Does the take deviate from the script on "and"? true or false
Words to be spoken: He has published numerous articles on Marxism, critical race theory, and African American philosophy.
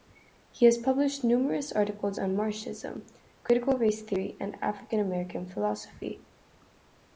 false